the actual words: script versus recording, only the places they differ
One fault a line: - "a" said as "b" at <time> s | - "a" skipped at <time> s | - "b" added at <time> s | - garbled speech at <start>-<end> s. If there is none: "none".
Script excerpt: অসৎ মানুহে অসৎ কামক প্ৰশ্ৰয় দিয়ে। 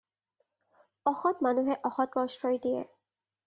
- "কামক" skipped at 2.1 s